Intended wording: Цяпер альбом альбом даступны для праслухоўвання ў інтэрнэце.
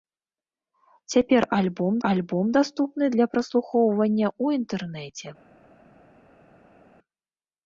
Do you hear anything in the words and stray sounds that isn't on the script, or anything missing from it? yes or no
no